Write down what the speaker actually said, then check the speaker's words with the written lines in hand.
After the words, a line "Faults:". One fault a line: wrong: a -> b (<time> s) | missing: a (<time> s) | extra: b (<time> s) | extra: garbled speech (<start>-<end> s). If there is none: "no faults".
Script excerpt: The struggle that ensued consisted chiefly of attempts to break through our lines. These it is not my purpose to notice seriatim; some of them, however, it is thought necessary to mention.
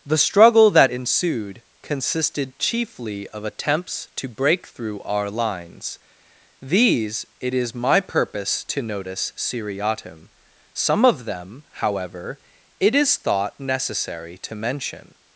The struggle that ensued consisted chiefly of attempts to break through our lines. These it is my purpose to notice seriatim; some of them, however, it is thought necessary to mention.
Faults:
missing: not (7.7 s)